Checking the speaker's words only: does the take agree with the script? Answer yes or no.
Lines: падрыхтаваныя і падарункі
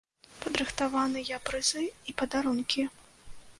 no